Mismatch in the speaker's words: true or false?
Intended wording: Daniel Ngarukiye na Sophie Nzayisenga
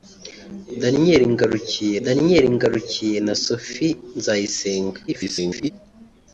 true